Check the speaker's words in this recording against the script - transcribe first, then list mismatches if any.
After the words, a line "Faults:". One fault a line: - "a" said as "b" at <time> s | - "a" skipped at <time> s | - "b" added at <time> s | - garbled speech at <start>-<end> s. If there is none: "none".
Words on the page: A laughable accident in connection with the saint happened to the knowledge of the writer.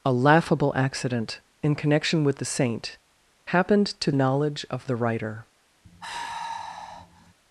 A laughable accident in connection with the saint happened to knowledge of the writer.
Faults:
- "the" skipped at 4.1 s